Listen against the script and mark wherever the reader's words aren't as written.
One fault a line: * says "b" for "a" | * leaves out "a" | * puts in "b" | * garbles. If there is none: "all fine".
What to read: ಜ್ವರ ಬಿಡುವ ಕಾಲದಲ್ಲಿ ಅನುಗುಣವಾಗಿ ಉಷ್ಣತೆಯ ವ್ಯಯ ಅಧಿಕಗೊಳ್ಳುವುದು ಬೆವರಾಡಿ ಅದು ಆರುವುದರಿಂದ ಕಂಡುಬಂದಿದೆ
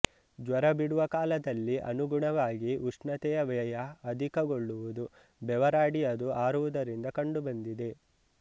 all fine